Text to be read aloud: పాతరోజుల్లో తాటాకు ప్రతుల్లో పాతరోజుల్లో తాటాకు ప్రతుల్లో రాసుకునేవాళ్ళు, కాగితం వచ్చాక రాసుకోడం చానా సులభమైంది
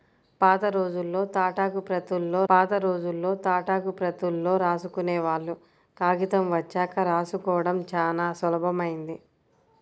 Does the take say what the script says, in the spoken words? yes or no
yes